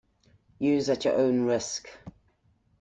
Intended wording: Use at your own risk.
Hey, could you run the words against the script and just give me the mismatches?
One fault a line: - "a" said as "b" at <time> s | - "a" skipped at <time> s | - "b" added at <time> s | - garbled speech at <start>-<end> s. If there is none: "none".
none